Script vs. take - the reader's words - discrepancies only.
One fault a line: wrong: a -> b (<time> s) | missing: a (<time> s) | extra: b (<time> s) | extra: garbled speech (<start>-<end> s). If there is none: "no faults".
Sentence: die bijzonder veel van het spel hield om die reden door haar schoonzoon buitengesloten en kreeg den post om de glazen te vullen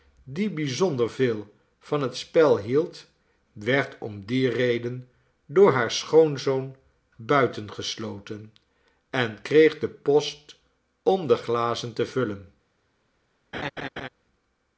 extra: werd (3.5 s)